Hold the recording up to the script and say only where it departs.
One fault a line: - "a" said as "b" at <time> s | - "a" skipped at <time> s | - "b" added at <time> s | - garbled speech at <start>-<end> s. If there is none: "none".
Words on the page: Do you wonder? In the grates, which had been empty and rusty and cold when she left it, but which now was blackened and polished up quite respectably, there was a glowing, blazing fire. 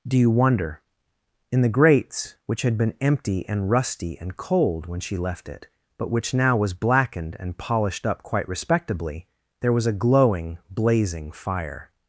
none